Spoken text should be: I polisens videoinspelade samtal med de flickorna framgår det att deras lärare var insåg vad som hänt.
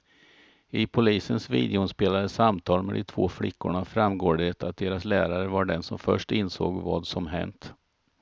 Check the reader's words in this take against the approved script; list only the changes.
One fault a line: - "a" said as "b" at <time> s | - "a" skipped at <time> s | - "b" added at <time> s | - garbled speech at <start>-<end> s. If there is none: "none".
- "två" added at 3.0 s
- "den som först" added at 5.7 s